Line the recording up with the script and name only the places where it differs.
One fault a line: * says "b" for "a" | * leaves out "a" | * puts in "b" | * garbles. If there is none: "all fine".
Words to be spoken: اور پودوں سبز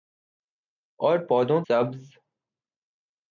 all fine